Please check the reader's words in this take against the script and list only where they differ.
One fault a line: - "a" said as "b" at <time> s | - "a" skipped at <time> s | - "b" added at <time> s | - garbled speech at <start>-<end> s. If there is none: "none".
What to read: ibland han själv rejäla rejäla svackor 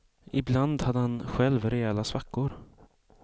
- "hade" added at 0.8 s
- "rejäla" skipped at 2.0 s